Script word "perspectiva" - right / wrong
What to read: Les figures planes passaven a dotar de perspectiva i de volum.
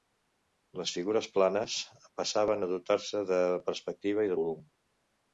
right